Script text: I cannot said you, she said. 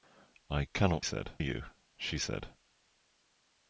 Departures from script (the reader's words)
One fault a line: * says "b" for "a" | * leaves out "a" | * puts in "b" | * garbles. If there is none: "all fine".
all fine